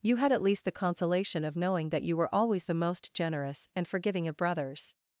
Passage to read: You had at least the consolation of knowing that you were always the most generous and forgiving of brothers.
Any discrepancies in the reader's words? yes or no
no